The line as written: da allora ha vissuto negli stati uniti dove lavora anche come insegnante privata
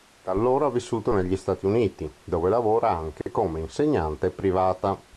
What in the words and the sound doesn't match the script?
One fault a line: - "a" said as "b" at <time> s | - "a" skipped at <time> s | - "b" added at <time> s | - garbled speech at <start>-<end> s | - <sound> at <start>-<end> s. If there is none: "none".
- dropout at 3.2-3.3 s